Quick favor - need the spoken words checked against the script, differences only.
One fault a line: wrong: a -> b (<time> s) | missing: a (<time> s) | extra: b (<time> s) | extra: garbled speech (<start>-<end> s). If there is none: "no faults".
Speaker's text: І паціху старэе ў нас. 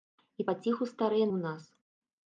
no faults